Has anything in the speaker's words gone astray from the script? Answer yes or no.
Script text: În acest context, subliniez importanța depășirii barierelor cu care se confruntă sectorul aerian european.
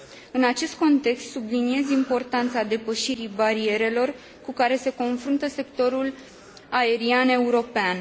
no